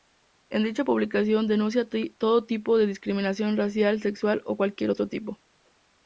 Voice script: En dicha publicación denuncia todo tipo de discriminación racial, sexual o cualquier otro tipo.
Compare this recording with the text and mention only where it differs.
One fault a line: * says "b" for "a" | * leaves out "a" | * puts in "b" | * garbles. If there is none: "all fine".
all fine